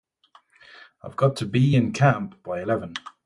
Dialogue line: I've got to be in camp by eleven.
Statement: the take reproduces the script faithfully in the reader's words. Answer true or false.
true